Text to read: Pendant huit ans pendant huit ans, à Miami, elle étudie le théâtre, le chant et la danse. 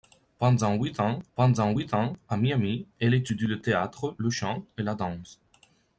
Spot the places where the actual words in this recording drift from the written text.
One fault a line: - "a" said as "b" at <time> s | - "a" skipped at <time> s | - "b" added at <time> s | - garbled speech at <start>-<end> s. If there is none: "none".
none